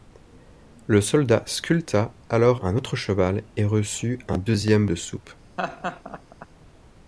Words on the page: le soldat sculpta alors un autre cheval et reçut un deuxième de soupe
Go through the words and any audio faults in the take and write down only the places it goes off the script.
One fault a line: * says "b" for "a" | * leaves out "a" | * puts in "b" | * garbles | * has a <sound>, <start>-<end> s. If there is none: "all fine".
* has a laugh, 5.6-6.5 s